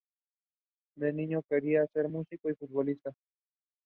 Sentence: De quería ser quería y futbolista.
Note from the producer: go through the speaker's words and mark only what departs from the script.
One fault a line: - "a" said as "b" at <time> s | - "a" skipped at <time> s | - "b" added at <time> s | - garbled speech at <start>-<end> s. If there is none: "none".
- "niño" added at 1.1 s
- "quería" said as "músico" at 2.1 s